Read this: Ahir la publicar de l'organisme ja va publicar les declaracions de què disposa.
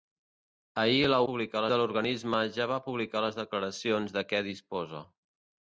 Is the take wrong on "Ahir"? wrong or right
right